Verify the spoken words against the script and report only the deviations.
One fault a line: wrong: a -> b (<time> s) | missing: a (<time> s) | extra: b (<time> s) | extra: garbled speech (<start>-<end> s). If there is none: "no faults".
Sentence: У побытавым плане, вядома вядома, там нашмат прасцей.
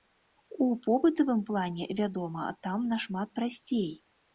missing: вядома (2.5 s)